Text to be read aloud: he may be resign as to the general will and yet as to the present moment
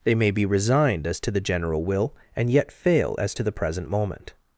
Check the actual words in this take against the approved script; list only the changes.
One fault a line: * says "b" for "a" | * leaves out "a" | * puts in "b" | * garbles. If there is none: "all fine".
* says "they" for "he"
* says "resigned" for "resign"
* puts in "fail"